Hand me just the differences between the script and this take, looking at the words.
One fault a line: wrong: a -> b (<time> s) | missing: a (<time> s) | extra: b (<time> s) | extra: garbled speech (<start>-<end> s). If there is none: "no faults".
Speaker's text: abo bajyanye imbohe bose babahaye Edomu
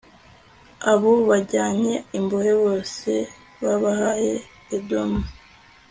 no faults